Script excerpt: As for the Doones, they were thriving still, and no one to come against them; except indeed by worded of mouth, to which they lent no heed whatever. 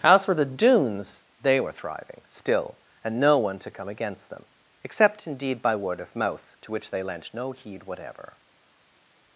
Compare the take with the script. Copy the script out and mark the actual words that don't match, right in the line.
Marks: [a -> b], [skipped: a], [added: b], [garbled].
As for the Doones, they were thriving still, and no one to come against them; except indeed by [worded -> word] of mouth, to which they lent no heed whatever.